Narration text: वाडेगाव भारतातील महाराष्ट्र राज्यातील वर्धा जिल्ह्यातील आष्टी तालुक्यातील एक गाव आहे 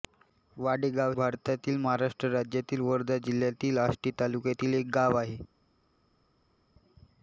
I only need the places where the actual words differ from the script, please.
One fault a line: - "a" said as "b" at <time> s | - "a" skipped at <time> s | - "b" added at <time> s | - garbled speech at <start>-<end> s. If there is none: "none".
none